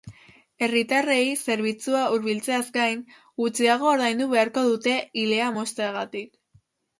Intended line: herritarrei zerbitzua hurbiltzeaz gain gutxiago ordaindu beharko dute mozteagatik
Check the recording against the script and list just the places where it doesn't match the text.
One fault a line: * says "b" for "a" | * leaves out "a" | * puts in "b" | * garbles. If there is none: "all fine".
* puts in "ilea"